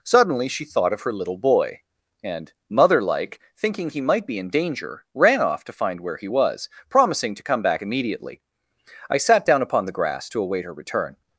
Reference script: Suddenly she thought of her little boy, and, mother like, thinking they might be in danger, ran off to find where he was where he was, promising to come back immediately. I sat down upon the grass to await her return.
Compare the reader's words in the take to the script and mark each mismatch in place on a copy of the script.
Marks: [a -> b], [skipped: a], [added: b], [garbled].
Suddenly she thought of her little boy, and, mother like, thinking [they -> he] might be in danger, ran off to find where he was [skipped: where he was,] promising to come back immediately. I sat down upon the grass to await her return.